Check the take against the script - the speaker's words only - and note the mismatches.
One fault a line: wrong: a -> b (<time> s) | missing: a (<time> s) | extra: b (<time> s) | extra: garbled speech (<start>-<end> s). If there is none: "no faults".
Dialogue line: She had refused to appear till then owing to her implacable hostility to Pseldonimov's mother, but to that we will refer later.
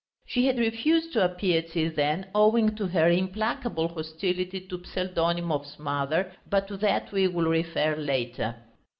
no faults